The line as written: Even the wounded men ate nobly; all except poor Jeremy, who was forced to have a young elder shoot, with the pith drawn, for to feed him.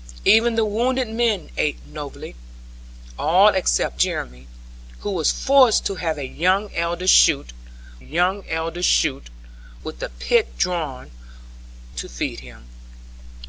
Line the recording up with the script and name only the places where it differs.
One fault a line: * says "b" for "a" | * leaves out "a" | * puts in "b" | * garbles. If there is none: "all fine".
* leaves out "poor"
* puts in "young elder shoot"
* leaves out "for"